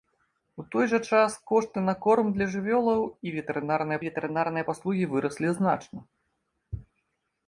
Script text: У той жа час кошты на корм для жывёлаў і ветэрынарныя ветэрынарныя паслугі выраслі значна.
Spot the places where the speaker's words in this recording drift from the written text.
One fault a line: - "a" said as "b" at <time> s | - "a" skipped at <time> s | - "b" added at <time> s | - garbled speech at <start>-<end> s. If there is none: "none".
none